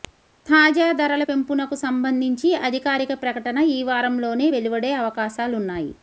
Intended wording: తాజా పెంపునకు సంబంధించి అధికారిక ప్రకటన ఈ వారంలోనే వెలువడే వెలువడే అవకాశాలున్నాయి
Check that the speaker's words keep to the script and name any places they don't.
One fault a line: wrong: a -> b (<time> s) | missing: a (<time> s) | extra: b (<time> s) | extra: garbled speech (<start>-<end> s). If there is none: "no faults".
extra: ధరల (0.9 s)
missing: వెలువడే (4.9 s)